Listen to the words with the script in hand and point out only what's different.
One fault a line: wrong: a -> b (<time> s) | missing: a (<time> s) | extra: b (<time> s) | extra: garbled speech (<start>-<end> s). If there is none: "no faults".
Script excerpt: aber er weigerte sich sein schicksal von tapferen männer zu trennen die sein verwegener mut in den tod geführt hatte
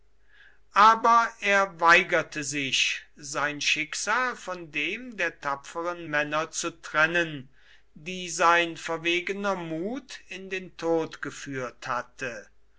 extra: dem der (4.7 s)